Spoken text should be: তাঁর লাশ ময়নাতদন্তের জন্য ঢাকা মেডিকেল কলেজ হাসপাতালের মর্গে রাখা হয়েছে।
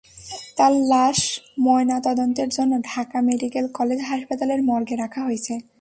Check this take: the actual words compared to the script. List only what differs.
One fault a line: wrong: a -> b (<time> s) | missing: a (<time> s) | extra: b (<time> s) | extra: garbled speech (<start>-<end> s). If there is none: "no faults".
no faults